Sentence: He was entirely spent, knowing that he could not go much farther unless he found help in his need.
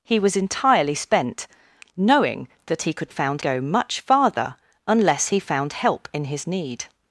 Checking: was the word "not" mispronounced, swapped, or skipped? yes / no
yes